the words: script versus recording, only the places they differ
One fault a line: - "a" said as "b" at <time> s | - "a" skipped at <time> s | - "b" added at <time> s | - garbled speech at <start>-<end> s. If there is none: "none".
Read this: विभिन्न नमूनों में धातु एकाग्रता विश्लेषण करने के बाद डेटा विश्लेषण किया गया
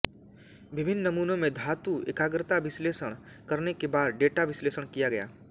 none